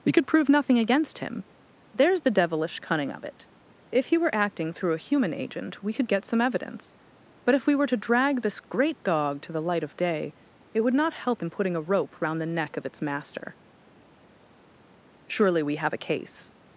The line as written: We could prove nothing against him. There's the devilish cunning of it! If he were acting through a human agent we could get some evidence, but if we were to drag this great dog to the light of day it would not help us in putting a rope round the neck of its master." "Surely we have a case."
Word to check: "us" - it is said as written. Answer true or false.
false